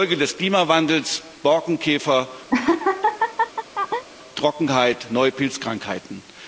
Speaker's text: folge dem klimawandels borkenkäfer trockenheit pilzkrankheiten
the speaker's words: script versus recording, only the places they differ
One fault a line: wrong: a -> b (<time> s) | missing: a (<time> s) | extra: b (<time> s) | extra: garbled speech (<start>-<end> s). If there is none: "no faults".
wrong: dem -> des (0.2 s)
extra: neue (5.1 s)